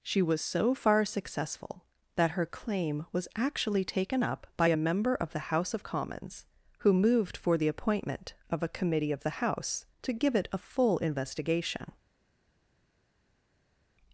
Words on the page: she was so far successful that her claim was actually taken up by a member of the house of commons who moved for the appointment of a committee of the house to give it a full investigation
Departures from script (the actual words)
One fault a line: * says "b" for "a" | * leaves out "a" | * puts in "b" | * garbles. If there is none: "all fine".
all fine